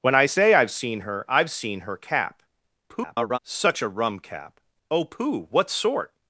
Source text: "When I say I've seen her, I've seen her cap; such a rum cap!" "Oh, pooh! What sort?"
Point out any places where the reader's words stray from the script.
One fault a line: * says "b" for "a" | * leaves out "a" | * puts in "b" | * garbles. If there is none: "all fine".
* garbles